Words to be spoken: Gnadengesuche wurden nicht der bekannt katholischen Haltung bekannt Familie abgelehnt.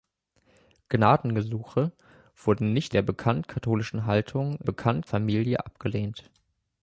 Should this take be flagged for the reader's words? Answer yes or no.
no